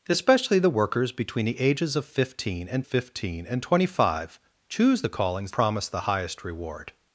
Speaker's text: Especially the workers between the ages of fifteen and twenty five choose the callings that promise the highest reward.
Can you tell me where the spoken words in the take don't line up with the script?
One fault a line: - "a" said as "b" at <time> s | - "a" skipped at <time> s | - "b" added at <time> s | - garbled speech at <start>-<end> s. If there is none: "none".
- "fifteen and" added at 2.8 s
- "that" skipped at 5.5 s